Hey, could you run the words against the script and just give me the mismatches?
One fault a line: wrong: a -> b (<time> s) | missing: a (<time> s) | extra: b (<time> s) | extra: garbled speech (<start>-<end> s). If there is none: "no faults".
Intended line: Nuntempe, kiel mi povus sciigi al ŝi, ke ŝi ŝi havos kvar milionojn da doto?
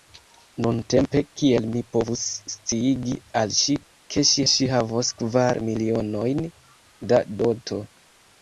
no faults